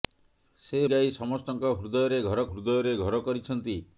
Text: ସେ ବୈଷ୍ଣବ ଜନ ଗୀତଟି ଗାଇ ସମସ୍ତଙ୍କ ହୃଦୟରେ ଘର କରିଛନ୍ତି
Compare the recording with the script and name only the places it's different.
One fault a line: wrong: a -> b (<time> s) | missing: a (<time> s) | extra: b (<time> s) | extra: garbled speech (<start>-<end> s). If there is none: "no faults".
wrong: ବୈଷ୍ଣବ ଜନ ଗୀତଟି ଗାଇ ସମସ୍ତଙ୍କ -> ଗାଇ ସମସ୍ତଙ୍କ ହୃଦୟରେ ଘର (0.9 s)